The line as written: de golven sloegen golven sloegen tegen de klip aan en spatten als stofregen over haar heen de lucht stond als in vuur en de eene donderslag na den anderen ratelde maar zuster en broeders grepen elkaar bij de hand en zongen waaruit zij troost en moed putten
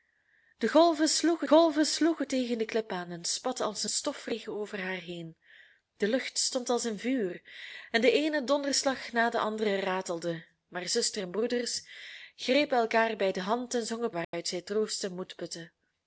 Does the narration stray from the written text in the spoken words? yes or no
no